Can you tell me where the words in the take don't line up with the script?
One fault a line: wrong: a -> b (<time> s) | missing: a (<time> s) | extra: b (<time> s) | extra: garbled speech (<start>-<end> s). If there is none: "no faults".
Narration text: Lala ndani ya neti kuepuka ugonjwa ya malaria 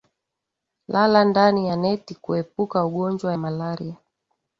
missing: ya (3.3 s)